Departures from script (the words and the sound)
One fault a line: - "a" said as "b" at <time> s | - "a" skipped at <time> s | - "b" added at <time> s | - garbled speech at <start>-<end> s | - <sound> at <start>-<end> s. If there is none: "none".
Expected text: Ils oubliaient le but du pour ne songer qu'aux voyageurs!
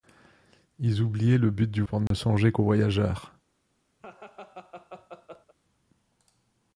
- dropout at 2.1-2.1 s
- laugh at 4.0-5.6 s